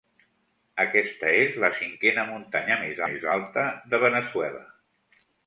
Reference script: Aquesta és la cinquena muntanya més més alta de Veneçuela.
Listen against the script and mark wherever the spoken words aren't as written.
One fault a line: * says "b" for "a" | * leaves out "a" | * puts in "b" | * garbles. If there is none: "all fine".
all fine